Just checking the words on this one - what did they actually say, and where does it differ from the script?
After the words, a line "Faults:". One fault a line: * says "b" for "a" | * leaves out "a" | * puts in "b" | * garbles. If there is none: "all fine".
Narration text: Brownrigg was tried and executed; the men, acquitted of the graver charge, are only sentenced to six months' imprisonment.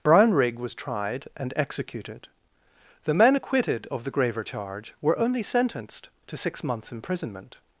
Brownrigg was tried and executed; the men, acquitted of the graver charge, were only sentenced to six months' imprisonment.
Faults:
* says "were" for "are"